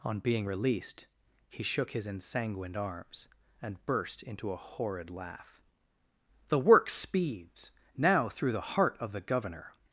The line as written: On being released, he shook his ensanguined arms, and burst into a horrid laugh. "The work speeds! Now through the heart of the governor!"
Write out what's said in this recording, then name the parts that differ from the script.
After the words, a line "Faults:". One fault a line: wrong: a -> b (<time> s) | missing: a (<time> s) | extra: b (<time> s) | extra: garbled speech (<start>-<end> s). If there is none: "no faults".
On being released, he shook his ensanguined arms, and burst into a horrid laugh. "The work speeds! Now through the heart of the governor!"
Faults:
no faults